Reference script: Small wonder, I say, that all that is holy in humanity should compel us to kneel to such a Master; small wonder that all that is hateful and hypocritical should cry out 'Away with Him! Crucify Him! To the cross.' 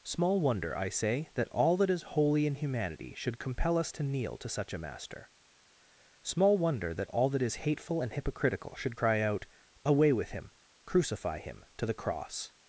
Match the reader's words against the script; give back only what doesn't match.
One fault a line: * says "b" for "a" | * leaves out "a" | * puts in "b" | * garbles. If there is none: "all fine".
all fine